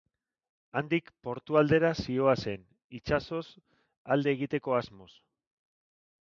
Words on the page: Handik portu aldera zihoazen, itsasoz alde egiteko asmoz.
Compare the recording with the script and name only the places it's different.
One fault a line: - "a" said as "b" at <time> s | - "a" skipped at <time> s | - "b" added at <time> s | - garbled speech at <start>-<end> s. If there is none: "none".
none